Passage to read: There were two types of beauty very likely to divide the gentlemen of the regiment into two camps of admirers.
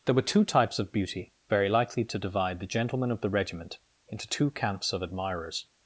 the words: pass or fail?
pass